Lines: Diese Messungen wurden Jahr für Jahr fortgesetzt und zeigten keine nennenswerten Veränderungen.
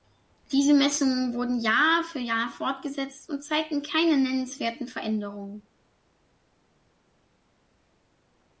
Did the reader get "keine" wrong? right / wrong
right